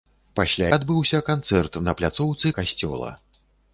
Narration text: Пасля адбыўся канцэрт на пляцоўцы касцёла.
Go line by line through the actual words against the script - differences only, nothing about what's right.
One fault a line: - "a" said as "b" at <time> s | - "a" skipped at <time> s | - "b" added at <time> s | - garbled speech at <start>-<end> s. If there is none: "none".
none